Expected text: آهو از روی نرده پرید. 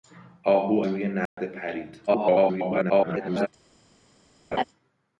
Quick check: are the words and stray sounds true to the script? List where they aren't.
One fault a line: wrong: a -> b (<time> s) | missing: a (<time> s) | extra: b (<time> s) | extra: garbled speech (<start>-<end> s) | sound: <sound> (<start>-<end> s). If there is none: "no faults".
missing: از (0.8 s)
sound: dropout (1.3-1.4 s)
extra: garbled speech (2.1-3.5 s)
sound: laugh (4.5-4.6 s)